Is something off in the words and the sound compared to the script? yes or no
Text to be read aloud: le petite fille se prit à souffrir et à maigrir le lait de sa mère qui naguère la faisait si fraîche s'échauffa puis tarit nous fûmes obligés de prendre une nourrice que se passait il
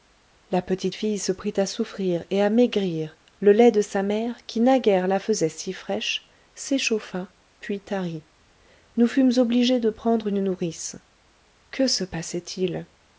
yes